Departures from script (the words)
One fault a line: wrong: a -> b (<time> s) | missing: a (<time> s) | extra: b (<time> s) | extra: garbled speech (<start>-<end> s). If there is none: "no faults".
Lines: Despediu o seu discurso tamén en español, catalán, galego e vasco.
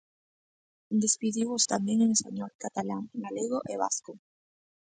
missing: seu discurso (1.6 s)